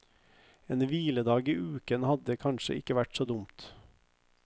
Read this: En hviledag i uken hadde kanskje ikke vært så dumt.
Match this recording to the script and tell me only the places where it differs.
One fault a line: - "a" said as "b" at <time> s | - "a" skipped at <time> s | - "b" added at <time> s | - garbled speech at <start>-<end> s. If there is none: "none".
none